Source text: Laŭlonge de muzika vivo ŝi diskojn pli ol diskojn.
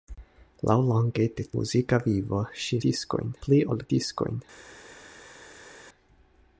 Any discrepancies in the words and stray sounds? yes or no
no